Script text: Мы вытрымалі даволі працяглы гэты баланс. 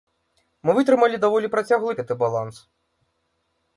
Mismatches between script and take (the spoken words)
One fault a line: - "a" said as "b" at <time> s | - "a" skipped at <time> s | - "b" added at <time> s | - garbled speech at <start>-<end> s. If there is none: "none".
none